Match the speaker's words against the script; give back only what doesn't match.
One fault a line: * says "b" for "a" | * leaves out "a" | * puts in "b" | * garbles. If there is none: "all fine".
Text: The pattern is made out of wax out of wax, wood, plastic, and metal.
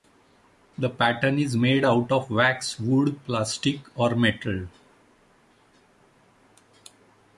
* leaves out "out of wax"
* says "or" for "and"